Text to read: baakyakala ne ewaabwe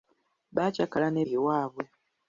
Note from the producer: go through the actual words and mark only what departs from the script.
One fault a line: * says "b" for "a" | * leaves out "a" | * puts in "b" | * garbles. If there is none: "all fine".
all fine